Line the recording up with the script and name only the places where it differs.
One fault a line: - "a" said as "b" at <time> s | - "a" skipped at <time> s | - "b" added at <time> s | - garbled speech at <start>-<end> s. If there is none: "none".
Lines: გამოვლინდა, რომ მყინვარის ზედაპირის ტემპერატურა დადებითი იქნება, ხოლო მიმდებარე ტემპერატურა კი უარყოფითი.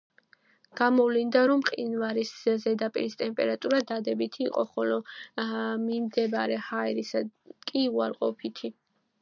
- "იქნება" said as "იყო" at 4.5 s
- "ტემპერატურა" said as "ჰაერისა" at 6.7 s